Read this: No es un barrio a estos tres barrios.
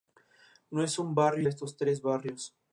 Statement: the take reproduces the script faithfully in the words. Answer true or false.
true